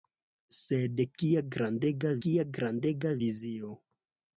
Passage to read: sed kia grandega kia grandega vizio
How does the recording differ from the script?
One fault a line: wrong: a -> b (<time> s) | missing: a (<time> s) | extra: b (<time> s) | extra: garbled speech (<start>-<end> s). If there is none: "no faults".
no faults